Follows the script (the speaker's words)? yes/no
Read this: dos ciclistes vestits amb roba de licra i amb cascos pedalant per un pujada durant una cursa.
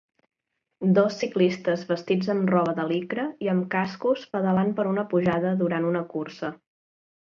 no